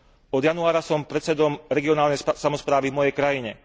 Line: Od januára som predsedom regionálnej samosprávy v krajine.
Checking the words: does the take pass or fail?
fail